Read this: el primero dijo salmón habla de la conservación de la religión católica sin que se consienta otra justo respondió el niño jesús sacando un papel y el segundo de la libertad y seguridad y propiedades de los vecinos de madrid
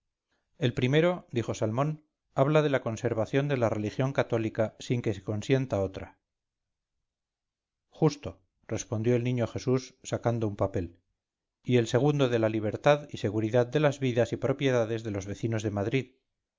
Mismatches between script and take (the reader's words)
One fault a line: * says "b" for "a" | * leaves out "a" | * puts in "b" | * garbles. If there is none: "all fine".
* puts in "de las vidas"